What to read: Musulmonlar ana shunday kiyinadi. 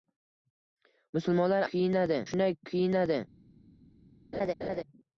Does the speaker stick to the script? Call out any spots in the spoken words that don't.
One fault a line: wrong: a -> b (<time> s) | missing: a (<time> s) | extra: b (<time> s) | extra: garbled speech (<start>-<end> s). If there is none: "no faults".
wrong: ana -> kiyinadi (1.7 s)